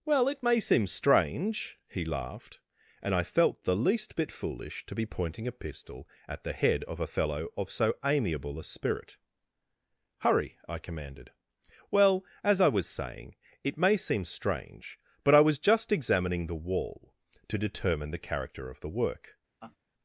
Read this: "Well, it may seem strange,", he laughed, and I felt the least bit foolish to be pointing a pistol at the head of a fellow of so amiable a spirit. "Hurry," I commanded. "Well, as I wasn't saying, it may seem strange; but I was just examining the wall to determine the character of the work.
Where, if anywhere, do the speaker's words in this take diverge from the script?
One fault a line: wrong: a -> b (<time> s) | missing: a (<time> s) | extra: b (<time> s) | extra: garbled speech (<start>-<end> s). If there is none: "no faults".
wrong: wasn't -> was (12.7 s)